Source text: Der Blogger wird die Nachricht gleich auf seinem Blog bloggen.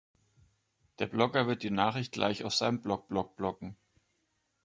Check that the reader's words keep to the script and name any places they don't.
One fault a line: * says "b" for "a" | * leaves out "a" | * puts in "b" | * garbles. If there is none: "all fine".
* puts in "Blog"